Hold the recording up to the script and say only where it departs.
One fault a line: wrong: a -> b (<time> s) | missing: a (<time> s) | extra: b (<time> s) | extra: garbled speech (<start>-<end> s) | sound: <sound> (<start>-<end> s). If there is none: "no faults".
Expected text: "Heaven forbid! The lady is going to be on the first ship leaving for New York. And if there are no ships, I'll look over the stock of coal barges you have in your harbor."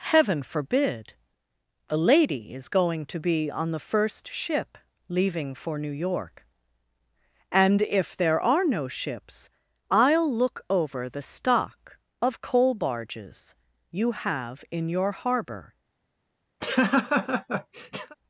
wrong: The -> A (1.9 s)
sound: laugh (16.6-18.2 s)